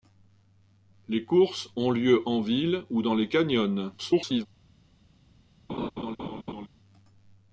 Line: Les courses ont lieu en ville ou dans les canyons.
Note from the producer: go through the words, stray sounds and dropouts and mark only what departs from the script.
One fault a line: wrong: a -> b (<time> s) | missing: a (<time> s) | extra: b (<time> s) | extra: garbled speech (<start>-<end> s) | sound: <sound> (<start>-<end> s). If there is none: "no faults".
extra: garbled speech (4.0-4.5 s)
sound: laugh (5.7-6.7 s)